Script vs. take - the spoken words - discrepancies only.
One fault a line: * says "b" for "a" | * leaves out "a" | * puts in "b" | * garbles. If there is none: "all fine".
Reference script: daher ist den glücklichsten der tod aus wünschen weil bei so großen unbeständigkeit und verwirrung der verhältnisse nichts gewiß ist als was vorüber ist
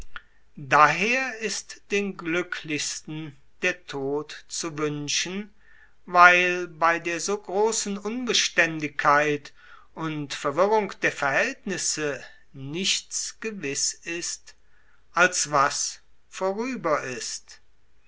* says "zu" for "aus"
* puts in "der"